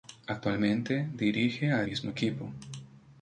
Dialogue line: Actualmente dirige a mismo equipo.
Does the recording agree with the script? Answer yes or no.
yes